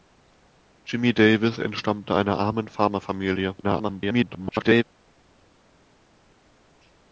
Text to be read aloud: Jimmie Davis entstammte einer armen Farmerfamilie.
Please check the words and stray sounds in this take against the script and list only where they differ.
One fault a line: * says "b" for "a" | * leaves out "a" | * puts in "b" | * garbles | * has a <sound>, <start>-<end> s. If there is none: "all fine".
* garbles